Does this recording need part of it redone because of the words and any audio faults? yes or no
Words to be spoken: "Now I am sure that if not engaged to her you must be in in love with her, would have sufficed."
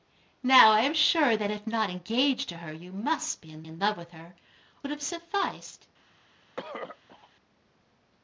yes